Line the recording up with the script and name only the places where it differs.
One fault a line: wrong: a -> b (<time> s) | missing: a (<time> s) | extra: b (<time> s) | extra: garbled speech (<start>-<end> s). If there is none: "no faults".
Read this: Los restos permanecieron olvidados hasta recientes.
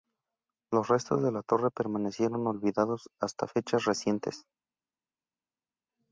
extra: de la torre (1.2 s)
extra: fechas (3.4 s)